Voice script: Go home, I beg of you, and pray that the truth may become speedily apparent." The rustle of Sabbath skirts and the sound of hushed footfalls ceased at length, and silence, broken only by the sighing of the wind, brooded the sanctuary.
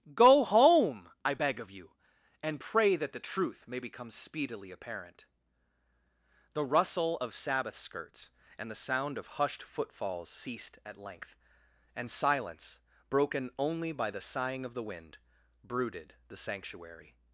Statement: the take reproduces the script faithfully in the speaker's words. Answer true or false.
true